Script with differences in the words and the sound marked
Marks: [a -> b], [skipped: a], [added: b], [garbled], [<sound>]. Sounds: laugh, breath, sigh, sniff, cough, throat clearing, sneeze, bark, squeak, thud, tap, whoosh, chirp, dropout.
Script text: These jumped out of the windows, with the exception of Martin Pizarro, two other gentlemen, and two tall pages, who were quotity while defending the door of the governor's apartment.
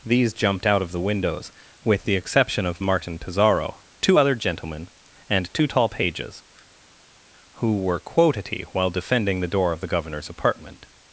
These jumped out of the windows, with the exception of Martin Pizarro, two other gentlemen, and two tall pages, who were quotity while defending the door of the governor's apartment.